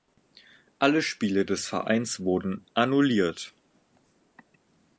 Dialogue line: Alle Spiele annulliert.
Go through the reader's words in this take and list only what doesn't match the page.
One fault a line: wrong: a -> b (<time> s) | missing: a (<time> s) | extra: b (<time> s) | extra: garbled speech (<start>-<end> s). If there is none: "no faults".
extra: des Vereins wurden (1.4 s)